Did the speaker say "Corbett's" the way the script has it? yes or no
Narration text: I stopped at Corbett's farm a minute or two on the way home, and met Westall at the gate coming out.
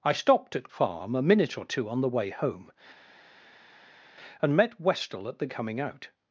no